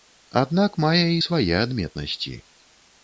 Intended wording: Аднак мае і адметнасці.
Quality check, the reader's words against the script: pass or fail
fail